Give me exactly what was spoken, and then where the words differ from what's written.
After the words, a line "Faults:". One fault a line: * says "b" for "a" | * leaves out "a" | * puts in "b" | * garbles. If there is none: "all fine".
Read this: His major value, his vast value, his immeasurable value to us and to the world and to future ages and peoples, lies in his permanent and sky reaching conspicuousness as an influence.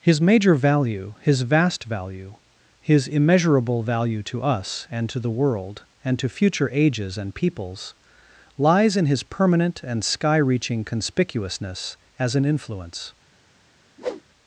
His major value, his vast value, his immeasurable value to us and to the world and to future ages and peoples, lies in his permanent and sky reaching conspicuousness as an influence.
Faults:
all fine